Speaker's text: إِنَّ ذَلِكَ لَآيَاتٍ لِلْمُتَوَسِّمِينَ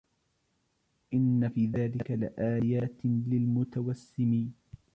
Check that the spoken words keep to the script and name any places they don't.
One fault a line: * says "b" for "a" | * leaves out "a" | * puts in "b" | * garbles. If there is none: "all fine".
* puts in "فِي"